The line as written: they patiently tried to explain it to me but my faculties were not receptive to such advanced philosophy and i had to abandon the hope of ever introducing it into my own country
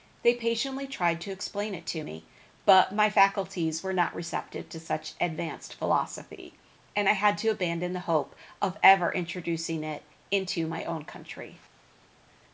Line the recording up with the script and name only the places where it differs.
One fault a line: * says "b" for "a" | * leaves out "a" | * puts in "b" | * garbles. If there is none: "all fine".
all fine